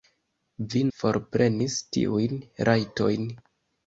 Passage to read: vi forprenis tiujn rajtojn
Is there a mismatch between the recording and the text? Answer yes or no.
no